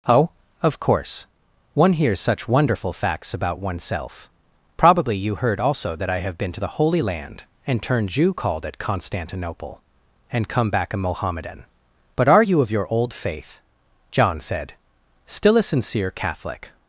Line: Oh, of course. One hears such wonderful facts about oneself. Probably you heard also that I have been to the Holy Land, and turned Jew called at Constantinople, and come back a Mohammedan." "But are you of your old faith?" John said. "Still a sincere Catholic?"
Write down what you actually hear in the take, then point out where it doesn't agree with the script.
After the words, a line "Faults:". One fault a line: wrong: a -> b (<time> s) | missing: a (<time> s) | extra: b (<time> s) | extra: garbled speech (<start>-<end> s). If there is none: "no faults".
Oh, of course. One hears such wonderful facts about oneself. Probably you heard also that I have been to the Holy Land, and turned Jew called at Constantinople, and come back a Mohammedan." "But are you of your old faith?" John said. "Still a sincere Catholic?"
Faults:
no faults